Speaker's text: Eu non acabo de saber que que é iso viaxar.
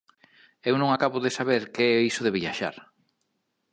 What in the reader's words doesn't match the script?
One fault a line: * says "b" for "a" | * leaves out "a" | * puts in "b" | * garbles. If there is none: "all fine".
* leaves out "que"
* puts in "de"